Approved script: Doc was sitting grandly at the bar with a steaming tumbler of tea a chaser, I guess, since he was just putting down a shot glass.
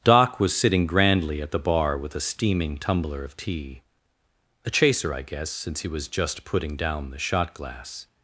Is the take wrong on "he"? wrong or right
right